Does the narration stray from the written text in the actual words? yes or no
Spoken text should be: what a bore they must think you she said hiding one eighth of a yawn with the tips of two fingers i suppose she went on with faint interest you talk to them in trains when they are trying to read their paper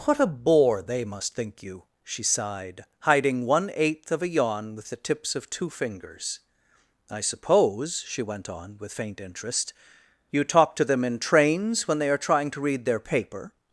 yes